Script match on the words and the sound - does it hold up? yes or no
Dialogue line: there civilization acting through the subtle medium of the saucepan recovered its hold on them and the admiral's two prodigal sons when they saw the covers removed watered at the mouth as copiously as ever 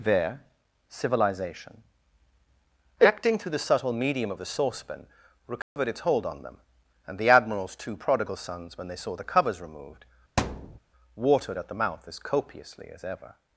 no